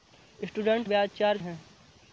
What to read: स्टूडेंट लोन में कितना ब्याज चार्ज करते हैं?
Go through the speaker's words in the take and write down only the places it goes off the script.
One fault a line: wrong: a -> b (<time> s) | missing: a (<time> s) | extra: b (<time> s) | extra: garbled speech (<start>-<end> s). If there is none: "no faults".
missing: लोन में कितना (0.9 s)
missing: करते (1.4 s)